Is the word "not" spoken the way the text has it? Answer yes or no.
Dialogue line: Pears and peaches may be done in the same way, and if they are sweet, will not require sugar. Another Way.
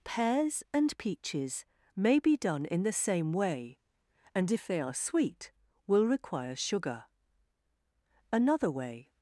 no